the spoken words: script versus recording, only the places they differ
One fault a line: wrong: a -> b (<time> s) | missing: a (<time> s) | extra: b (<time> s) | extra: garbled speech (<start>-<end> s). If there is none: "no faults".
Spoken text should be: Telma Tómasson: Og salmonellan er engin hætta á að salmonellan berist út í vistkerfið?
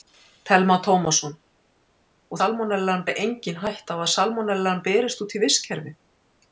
no faults